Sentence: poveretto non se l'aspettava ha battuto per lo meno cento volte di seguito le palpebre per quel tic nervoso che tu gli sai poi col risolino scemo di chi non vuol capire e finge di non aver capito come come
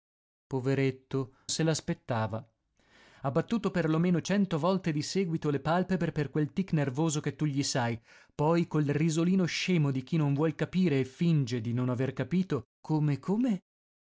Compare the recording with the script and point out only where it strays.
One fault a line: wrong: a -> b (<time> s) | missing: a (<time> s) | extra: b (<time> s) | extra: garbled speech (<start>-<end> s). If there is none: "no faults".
missing: non (1.4 s)